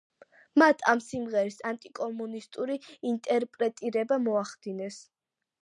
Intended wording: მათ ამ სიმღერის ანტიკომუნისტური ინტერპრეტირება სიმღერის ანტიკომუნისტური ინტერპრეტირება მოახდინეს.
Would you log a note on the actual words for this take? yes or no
yes